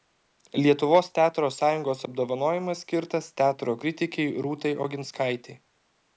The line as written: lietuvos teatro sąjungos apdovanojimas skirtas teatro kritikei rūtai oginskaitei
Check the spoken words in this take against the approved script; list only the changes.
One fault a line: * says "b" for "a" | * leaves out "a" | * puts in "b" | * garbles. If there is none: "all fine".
all fine